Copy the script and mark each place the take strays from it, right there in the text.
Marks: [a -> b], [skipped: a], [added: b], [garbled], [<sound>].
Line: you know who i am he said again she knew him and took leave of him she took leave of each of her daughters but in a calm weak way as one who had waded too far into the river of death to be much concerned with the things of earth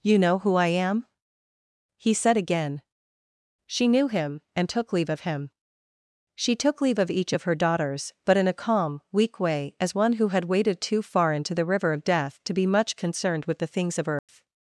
you know who i am he said again she knew him and took leave of him she took leave of each of her daughters but in a calm weak way as one who had waded too far into the river of death to be much concerned with the things of earth [dropout]